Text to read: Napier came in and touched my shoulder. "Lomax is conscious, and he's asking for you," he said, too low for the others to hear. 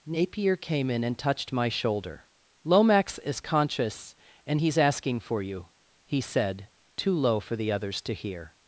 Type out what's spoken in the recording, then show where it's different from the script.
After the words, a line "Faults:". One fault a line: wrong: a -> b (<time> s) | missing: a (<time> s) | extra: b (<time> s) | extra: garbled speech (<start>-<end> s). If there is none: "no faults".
Napier came in and touched my shoulder. "Lomax is conscious, and he's asking for you," he said, too low for the others to hear.
Faults:
no faults